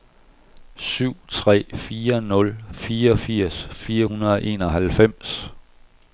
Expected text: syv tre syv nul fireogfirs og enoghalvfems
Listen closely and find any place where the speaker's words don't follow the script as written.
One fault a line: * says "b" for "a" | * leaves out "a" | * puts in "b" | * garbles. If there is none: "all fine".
* says "fire" for "syv"
* puts in "fire hundrede"